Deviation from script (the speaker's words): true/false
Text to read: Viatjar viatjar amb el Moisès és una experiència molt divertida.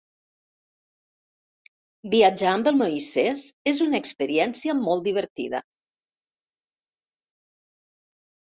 true